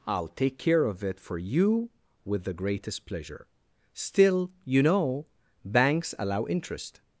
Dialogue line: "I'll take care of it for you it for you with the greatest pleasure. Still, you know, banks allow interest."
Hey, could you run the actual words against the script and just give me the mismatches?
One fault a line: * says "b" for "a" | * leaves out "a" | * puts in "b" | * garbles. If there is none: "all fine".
* leaves out "it for you"